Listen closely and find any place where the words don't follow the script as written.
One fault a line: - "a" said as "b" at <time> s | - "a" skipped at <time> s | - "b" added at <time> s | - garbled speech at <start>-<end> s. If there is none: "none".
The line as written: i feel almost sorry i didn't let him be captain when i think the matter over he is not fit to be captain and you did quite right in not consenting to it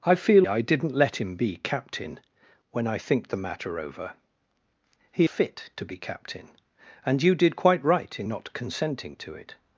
- "almost sorry" skipped at 0.5 s
- "is not" skipped at 5.3 s